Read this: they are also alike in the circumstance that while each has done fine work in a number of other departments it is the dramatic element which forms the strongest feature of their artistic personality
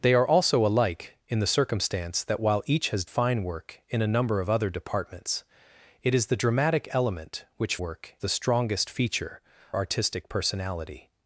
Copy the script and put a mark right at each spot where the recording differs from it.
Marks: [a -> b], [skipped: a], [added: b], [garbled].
they are also alike in the circumstance that while each has [skipped: done] fine work in a number of other departments it is the dramatic element which [forms -> work] the strongest feature [skipped: of their] artistic personality